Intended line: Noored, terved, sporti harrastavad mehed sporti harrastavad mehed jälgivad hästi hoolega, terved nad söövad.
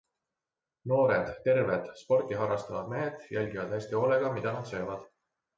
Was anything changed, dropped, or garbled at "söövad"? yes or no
no